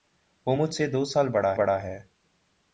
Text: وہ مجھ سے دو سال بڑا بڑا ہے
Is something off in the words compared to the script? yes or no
no